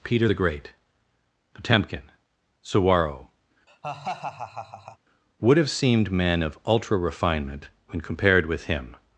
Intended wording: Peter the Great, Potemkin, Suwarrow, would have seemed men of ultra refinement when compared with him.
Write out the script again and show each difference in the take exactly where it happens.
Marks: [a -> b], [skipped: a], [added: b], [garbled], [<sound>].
Peter the Great, Potemkin, Suwarrow, [laugh] would have seemed men of ultra refinement when compared with him.